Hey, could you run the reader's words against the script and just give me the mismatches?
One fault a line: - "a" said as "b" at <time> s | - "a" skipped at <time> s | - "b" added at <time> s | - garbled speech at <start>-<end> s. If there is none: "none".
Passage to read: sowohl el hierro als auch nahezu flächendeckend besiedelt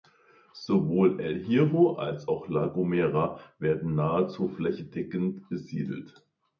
- "la gomera werden" added at 2.5 s